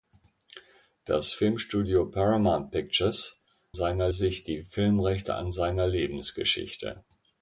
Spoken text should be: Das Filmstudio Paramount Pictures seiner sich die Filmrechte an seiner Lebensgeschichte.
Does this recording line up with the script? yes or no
yes